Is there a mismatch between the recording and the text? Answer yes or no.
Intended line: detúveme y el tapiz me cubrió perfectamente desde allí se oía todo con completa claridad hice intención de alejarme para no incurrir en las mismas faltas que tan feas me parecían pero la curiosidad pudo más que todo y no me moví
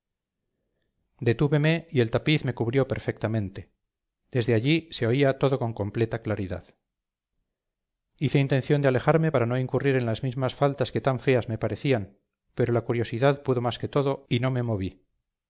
no